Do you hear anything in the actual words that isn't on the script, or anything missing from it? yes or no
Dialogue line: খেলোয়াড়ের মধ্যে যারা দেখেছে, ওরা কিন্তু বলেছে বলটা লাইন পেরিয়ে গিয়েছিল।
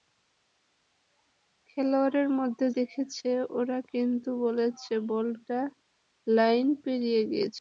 yes